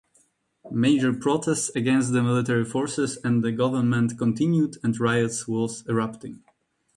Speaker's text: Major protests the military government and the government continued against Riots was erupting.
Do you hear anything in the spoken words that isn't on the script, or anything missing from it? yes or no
yes